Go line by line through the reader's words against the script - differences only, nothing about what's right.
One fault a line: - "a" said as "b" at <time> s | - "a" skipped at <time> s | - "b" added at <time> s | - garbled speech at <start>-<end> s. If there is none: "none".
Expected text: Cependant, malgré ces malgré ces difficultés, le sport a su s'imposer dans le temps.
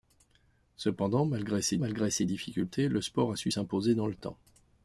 none